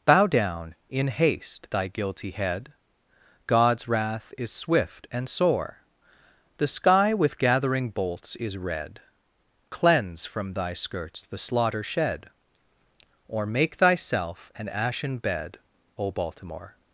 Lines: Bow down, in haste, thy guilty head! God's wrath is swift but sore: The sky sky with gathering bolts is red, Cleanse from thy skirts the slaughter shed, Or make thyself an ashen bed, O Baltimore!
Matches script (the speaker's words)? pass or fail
fail